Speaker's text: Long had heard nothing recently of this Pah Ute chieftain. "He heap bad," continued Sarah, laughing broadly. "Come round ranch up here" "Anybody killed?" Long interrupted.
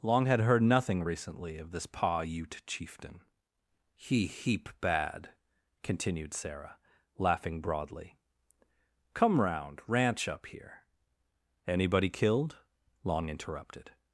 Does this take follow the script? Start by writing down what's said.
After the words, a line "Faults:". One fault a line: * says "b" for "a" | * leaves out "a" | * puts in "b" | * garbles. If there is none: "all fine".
Long had heard nothing recently of this Pah Ute chieftain. "He heap bad," continued Sarah, laughing broadly. "Come round ranch up here" "Anybody killed?" Long interrupted.
Faults:
all fine